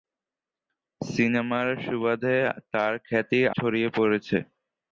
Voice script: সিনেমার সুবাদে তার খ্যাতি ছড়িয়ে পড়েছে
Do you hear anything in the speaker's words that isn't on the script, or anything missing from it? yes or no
no